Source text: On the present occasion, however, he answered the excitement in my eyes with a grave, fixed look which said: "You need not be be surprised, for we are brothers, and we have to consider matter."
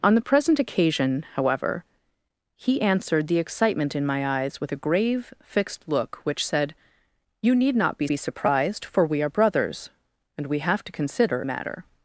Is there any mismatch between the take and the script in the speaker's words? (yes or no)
no